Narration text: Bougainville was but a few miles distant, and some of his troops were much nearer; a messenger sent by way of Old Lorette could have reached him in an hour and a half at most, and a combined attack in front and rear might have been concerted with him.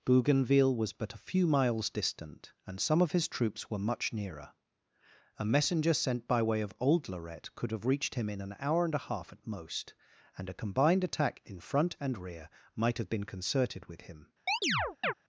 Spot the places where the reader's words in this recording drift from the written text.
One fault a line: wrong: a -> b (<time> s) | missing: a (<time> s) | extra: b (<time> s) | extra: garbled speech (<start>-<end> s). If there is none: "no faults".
no faults